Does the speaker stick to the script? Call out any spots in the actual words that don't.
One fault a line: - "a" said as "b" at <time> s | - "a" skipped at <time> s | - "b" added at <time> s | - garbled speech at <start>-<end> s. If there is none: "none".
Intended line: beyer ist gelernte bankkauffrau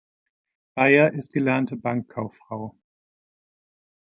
none